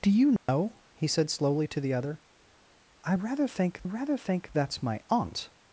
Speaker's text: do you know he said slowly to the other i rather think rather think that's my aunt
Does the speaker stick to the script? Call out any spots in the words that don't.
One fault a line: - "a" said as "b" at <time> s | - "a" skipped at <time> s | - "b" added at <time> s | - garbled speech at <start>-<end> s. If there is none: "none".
none